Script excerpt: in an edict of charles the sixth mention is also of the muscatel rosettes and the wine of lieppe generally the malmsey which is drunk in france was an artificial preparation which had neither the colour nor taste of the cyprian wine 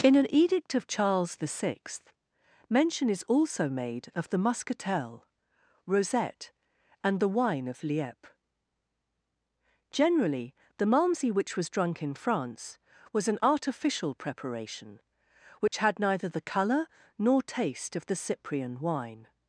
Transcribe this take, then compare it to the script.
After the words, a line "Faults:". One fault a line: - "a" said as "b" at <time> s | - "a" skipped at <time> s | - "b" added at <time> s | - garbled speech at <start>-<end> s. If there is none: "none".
in an edict of charles the sixth mention is also made of the muscatel rosette and the wine of lieppe generally the malmsey which was drunk in france was an artificial preparation which had neither the colour nor taste of the cyprian wine
Faults:
- "made" added at 3.7 s
- "rosettes" said as "rosette" at 5.8 s
- "is" said as "was" at 11.6 s